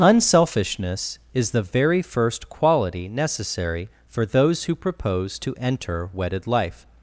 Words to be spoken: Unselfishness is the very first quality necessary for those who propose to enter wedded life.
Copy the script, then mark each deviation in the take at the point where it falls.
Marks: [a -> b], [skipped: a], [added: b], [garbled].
Unselfishness is the very first quality necessary for those who propose to enter wedded life.